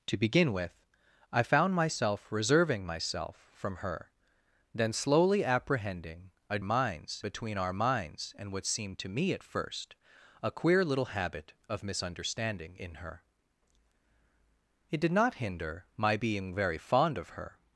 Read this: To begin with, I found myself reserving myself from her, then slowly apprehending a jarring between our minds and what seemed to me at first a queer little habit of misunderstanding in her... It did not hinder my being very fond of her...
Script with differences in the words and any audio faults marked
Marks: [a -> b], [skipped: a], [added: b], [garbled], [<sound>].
To begin with, I found myself reserving myself from her, then slowly apprehending a [jarring -> minds] between our minds and what seemed to me at first a queer little habit of misunderstanding in her... It did not hinder my being very fond of her...